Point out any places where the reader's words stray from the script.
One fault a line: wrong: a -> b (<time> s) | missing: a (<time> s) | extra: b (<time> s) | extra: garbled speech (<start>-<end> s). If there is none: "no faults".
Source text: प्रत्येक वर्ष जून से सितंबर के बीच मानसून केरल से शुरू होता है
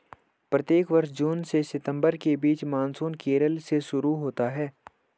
no faults